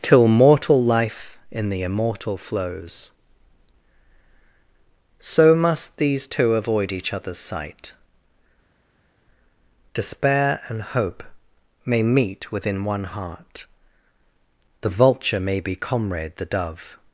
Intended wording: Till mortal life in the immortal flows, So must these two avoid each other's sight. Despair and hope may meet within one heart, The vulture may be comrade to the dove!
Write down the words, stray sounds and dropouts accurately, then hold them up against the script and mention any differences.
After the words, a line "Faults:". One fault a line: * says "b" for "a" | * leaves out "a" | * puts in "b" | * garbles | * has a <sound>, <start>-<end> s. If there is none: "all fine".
Till mortal life in the immortal flows, So must these two avoid each other's sight. Despair and hope may meet within one heart, The vulture may be comrade the dove!
Faults:
* leaves out "to"